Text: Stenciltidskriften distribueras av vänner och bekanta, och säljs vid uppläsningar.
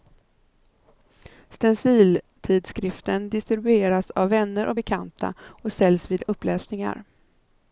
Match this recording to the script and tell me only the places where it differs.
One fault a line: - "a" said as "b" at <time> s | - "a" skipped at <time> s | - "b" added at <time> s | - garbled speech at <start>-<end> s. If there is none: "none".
none